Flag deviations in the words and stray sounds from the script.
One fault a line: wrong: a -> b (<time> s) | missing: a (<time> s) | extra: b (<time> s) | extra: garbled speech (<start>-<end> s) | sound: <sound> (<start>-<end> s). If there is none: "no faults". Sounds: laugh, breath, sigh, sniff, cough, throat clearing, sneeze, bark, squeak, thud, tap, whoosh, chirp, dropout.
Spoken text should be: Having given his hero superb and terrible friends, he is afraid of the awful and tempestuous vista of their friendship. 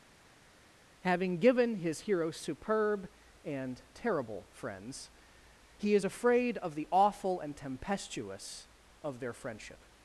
missing: vista (8.7 s)